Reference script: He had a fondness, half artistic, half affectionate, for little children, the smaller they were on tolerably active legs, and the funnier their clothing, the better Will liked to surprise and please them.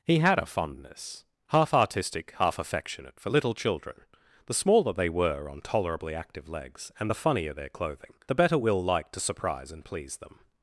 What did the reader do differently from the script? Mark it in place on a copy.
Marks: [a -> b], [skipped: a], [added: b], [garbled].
He had a fondness, half artistic, half affectionate, for little children, the smaller they were on tolerably active legs, and the funnier their clothing, the better Will liked to surprise and please them.